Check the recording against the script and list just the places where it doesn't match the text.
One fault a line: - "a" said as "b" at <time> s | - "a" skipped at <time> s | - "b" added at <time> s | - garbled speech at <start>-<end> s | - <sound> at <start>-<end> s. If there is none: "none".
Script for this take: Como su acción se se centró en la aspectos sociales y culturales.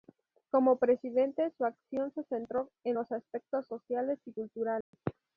- "presidente" added at 0.8 s
- "se" skipped at 2.2 s
- "la" said as "los" at 2.9 s
- dropout at 4.8-4.9 s